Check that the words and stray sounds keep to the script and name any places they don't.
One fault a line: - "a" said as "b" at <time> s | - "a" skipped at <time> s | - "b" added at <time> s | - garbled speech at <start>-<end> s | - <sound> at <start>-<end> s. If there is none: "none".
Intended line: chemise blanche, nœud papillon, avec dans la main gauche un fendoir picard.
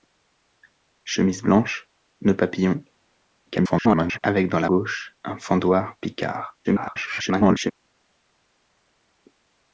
- garbled speech at 3.5-4.2 s
- "main" skipped at 4.7 s
- garbled speech at 6.6-7.7 s